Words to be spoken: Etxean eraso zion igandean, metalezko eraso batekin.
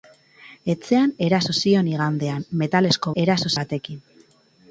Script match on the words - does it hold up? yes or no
yes